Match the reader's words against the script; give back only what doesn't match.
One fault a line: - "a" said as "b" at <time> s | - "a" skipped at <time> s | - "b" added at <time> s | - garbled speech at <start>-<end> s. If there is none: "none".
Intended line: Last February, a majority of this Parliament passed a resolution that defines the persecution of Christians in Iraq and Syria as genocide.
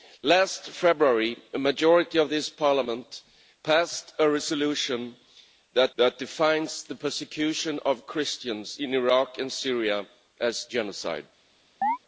- "that" added at 6.0 s